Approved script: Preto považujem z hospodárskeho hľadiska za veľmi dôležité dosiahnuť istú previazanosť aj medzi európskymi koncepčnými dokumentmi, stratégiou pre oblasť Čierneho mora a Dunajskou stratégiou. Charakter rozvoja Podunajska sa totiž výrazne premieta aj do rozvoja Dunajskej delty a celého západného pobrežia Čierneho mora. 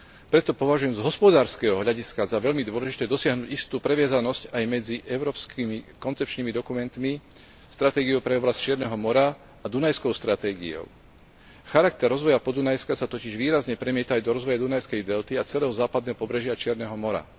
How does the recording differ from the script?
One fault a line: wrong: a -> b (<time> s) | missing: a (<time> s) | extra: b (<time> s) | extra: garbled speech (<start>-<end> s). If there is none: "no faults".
no faults